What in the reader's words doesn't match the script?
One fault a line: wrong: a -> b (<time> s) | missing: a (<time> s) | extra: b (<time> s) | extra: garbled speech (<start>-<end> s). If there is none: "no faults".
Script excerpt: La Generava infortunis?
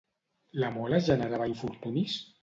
extra: Mola (0.8 s)